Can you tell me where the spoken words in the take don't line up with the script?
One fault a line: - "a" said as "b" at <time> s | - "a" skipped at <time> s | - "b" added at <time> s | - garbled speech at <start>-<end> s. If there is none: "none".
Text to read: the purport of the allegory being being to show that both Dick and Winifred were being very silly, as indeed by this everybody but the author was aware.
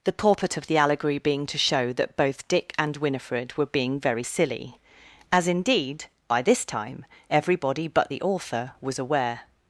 - "being" skipped at 1.4 s
- "time" added at 6.6 s